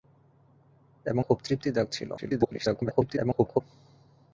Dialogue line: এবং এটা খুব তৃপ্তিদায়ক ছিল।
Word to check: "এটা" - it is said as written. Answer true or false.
false